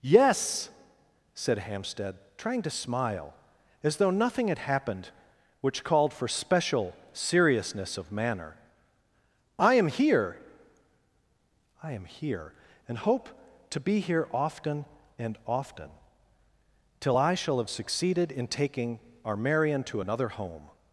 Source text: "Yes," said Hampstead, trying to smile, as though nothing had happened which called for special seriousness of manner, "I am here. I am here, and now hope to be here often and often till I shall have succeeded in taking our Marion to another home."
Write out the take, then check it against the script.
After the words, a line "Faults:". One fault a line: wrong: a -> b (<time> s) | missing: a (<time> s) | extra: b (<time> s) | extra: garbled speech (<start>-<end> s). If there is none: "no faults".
"Yes," said Hampstead, trying to smile, as though nothing had happened which called for special seriousness of manner, "I am here. I am here, and hope to be here often and often till I shall have succeeded in taking our Marion to another home."
Faults:
missing: now (13.0 s)